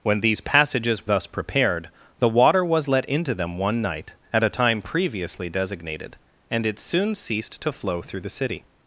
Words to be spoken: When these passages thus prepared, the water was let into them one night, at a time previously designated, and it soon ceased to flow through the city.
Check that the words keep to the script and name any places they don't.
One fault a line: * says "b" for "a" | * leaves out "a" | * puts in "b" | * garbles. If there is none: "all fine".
all fine